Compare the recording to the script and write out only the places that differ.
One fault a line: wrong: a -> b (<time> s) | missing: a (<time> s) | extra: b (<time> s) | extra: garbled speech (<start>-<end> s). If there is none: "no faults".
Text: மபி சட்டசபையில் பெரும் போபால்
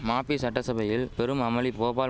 extra: அமளி (1.4 s)